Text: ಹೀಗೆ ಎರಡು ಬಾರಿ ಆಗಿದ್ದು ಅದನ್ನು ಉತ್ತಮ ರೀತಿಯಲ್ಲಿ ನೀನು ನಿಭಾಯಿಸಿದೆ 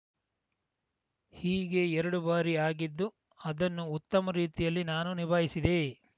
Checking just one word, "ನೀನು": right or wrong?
wrong